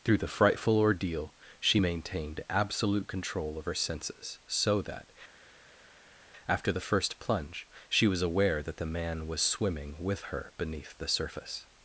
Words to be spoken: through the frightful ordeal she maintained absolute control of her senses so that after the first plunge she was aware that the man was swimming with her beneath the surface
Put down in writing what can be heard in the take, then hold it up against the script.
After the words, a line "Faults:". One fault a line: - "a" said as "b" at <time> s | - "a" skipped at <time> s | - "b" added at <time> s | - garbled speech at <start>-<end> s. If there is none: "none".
through the frightful ordeal she maintained absolute control of her senses so that after the first plunge she was aware that the man was swimming with her beneath the surface
Faults:
none